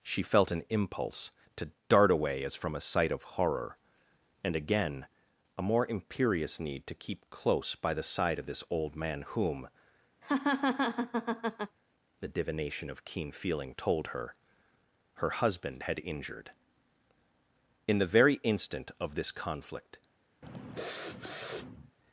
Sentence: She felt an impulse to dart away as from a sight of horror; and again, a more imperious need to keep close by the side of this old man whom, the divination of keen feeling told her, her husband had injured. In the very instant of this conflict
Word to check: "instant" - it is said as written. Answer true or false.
true